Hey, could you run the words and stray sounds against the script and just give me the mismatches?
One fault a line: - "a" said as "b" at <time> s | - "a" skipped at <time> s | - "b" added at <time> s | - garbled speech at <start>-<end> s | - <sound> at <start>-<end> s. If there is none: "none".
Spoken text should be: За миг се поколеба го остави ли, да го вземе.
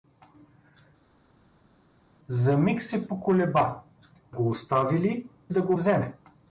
none